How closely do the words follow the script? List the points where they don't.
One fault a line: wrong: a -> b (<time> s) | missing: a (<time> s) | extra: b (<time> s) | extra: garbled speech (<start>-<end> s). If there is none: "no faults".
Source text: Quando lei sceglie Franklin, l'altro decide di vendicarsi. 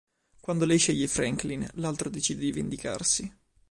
no faults